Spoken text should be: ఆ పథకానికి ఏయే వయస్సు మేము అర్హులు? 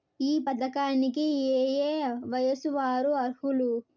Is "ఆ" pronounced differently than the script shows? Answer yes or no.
yes